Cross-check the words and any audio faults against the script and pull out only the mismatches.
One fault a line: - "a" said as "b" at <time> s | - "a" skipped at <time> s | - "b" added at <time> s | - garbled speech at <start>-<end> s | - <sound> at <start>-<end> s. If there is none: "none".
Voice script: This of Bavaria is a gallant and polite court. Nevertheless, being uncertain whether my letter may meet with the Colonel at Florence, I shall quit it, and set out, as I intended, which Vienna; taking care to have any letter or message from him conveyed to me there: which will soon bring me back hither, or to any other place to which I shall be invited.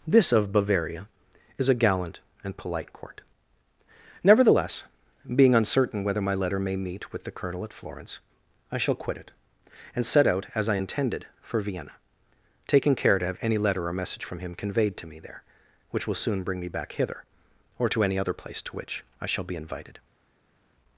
- "which" said as "for" at 11.4 s